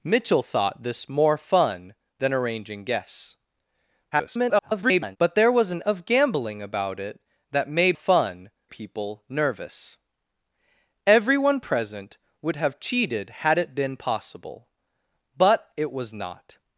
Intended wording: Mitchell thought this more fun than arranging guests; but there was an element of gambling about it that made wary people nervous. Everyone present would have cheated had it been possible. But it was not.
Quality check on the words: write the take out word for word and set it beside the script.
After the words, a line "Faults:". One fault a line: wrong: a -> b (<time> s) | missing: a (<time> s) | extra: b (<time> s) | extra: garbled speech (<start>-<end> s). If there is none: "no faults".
Mitchell thought this more fun than arranging guests; [garbled] but there was an of gambling about it that made fun people nervous. Everyone present would have cheated had it been possible. But it was not.
Faults:
extra: garbled speech (4.1-5.2 s)
missing: element (5.8 s)
wrong: wary -> fun (7.9 s)